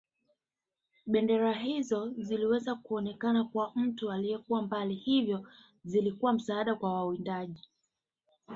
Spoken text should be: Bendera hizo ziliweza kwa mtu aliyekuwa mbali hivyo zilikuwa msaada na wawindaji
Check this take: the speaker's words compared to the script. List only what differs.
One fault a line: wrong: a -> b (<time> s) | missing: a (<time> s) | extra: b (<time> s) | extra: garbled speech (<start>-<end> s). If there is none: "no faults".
extra: kuonekana (2.8 s)
wrong: na -> kwa (6.8 s)